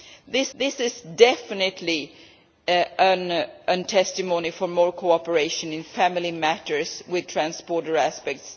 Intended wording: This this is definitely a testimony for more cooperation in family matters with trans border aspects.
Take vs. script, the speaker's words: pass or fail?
pass